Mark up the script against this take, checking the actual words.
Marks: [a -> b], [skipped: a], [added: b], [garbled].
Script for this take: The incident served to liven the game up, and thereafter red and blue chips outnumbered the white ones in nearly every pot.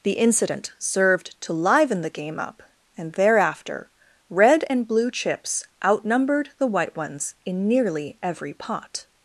The incident served to liven the game up, and thereafter red and blue chips outnumbered the white ones in nearly every pot.